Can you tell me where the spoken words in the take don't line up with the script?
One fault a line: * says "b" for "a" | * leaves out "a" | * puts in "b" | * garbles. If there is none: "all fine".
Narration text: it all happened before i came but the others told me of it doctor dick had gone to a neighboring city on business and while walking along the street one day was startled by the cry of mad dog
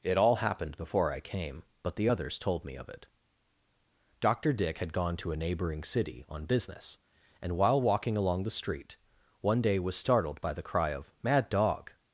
all fine